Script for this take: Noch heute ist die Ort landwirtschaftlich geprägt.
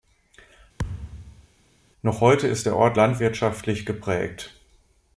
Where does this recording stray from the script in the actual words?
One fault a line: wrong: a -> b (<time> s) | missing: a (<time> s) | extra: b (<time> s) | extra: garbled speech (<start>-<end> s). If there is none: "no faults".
wrong: die -> der (2.7 s)